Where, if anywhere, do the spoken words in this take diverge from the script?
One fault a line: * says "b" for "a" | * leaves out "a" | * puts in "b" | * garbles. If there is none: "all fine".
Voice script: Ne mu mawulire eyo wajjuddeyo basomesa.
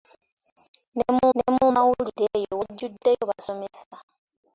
* puts in "ne mu"